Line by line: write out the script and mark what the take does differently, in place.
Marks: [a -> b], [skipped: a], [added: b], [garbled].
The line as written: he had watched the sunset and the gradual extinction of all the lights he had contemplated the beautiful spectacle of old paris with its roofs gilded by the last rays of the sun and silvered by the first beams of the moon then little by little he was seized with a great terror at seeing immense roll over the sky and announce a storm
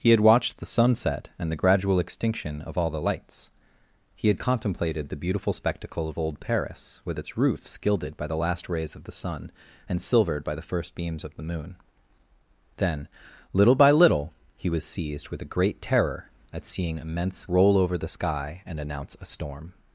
he had watched the sunset and the gradual extinction of all the lights he had contemplated the beautiful spectacle of old paris with its roofs gilded by the last rays of the sun and silvered by the first beams of the moon then little by little he was seized with a great terror at seeing immense roll over the sky and announce a storm